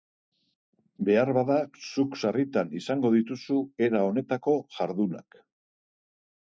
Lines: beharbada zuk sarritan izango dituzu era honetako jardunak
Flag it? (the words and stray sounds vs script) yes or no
no